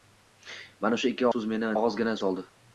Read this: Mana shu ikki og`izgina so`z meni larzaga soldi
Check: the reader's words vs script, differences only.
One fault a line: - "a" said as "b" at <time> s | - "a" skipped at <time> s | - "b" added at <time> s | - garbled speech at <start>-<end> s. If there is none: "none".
- "og`izgina" skipped at 1.3 s
- "larzaga" said as "og`izgina" at 1.7 s